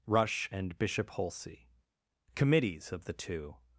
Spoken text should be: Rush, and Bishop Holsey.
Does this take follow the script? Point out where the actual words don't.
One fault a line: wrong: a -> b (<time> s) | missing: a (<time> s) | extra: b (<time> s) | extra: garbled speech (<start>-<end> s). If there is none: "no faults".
extra: Committees of the Two (2.3 s)